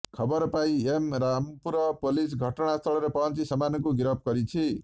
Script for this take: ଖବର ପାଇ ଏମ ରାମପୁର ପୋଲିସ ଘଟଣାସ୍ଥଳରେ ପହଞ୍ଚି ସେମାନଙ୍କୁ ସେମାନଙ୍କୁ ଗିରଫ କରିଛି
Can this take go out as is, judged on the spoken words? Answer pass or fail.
fail